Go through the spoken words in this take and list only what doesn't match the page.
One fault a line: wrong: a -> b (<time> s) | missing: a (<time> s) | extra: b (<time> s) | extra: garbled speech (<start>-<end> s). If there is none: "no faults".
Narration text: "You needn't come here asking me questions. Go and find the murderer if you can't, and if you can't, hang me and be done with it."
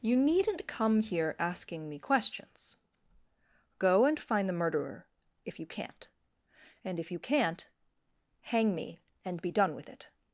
no faults